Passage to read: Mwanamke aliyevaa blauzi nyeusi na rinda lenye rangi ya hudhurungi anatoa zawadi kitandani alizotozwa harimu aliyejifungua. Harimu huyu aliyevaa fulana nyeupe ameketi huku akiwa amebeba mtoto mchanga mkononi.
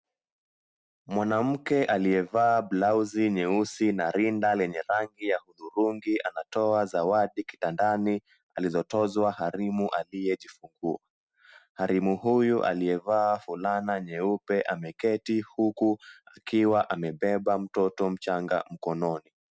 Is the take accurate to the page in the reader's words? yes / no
yes